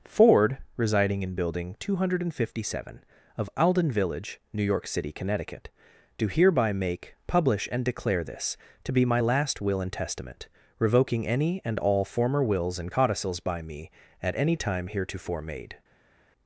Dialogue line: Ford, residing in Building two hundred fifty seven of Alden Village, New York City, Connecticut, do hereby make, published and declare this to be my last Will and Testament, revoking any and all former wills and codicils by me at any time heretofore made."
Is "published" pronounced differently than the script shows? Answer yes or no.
yes